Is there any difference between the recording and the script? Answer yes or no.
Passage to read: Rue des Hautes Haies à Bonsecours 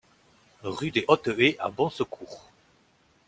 no